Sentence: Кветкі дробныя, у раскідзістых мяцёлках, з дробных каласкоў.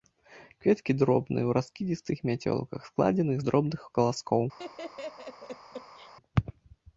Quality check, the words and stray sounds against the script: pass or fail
fail